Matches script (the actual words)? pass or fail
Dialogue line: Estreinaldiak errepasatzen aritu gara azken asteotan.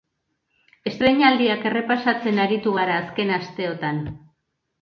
pass